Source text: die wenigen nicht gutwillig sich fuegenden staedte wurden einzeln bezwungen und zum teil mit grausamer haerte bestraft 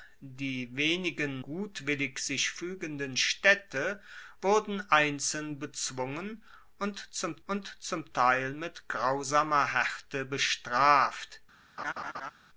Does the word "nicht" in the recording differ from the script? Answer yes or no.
yes